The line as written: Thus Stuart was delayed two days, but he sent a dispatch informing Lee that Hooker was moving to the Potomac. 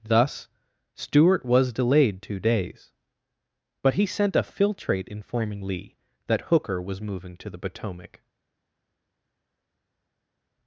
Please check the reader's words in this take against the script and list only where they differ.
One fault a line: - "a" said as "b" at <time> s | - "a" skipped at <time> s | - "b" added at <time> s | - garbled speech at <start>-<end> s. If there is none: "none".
- "dispatch" said as "filtrate" at 4.4 s